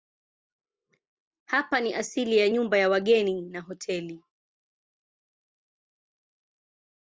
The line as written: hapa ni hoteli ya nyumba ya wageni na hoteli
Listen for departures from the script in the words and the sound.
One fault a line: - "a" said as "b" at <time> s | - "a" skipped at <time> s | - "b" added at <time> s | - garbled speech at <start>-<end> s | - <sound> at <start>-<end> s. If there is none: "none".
- "hoteli" said as "asili" at 1.9 s